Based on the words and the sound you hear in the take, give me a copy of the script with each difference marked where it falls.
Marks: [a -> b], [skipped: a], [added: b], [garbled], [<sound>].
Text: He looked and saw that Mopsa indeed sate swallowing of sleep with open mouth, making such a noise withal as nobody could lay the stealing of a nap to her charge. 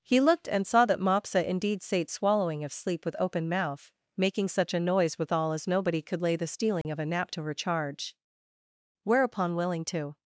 He looked and saw that Mopsa indeed sate swallowing of sleep with open mouth, making such a noise withal as nobody could lay the stealing [dropout] of a nap to her charge. [added: Whereupon willing to]